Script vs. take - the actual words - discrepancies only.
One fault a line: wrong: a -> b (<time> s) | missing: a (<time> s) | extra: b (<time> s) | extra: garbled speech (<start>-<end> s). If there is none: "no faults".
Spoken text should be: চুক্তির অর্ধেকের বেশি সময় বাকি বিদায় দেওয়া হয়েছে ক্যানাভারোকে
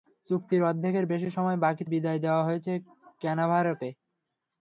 no faults